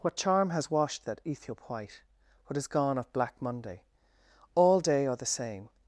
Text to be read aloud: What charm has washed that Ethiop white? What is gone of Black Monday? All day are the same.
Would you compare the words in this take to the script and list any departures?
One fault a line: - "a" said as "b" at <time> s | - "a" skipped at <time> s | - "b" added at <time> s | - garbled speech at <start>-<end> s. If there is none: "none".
none